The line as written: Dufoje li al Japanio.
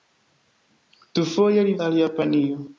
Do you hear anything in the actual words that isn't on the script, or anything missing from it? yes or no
no